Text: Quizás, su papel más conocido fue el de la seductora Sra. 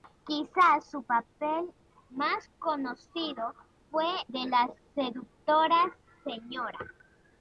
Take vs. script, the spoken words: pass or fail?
fail